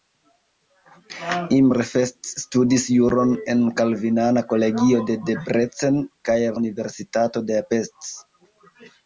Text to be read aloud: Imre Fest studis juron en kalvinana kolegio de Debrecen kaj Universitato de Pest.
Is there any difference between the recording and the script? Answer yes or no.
no